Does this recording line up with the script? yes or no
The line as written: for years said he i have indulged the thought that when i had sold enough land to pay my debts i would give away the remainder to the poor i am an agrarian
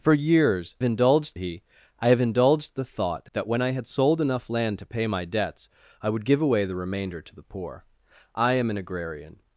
no